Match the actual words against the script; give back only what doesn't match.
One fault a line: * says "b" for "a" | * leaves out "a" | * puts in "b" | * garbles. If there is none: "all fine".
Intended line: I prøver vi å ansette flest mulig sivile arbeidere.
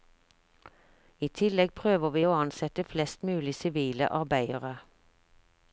* puts in "tillegg"